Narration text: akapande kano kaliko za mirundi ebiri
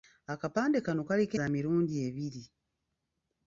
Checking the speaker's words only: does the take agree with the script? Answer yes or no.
yes